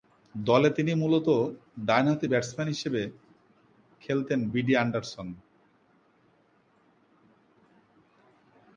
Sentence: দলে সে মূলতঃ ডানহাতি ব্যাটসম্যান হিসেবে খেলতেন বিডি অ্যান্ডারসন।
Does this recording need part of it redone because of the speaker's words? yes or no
yes